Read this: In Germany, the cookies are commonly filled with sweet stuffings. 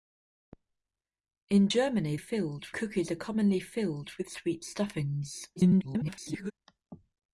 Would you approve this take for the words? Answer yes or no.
no